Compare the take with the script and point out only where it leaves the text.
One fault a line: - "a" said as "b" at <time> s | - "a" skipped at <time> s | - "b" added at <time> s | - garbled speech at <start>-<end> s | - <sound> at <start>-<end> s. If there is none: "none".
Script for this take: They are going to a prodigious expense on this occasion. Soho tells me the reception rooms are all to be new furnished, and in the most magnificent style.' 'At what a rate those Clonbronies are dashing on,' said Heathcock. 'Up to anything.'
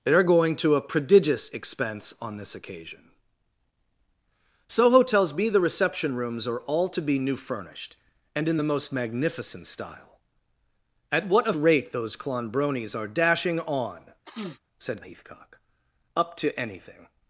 - sniff at 14.3-14.6 s